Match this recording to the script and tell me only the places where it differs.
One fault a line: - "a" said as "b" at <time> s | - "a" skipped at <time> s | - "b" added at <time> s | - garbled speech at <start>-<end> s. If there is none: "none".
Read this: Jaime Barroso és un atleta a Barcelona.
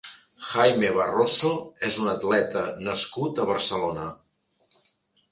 - "nascut" added at 2.9 s